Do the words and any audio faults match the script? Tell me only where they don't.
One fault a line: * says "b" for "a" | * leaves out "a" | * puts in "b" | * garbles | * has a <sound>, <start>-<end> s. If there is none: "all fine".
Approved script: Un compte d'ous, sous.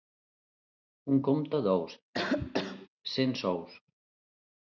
* has a cough, 2.1-2.9 s
* puts in "cent"